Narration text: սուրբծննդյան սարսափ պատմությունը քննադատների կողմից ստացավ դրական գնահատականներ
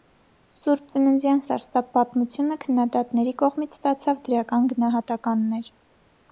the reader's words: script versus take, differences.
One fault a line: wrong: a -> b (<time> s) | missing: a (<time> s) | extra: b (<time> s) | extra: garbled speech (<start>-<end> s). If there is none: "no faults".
no faults